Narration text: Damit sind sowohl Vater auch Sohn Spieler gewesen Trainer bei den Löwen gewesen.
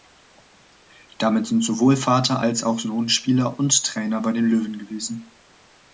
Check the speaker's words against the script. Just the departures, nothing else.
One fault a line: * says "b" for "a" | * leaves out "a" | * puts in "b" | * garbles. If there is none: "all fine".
* puts in "als"
* says "und" for "gewesen"